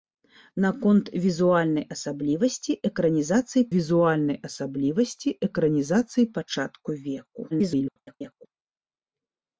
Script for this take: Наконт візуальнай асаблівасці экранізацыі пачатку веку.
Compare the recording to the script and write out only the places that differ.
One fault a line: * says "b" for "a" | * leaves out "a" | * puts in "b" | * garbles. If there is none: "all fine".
* puts in "візуальнай асаблівасці экранізацыі"
* garbles